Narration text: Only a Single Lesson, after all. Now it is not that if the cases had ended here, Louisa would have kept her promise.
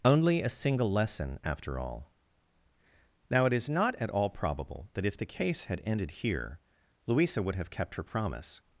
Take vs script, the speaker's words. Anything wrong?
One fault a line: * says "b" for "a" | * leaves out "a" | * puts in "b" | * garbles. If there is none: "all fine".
* puts in "at all probable"
* says "case" for "cases"